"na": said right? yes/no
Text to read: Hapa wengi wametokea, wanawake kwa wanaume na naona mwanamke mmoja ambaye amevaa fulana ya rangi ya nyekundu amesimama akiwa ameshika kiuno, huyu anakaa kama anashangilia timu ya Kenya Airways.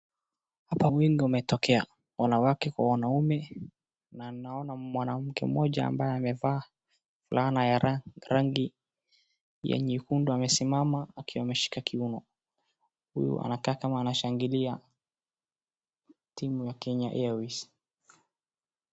yes